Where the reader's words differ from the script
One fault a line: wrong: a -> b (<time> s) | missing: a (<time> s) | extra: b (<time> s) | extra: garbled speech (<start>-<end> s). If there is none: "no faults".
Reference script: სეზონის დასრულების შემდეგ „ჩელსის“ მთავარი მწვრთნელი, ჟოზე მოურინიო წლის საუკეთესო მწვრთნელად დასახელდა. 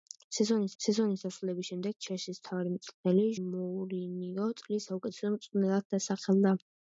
extra: სეზონის (0.8 s)
missing: ჟოზე (3.3 s)